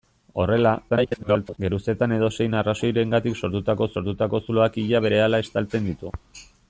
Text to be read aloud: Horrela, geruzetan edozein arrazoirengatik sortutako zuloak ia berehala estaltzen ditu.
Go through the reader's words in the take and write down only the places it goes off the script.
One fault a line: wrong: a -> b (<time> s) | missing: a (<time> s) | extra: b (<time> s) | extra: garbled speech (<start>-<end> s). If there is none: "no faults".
extra: garbled speech (0.9-1.6 s)
extra: sortutako (4.0 s)